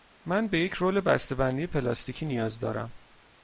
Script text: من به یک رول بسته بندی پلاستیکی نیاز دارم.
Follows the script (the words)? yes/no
yes